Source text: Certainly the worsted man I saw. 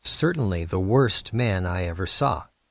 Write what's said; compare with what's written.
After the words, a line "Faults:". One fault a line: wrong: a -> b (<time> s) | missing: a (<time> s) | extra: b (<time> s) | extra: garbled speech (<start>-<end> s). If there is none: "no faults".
Certainly the worst man I ever saw.
Faults:
wrong: worsted -> worst (0.8 s)
extra: ever (1.8 s)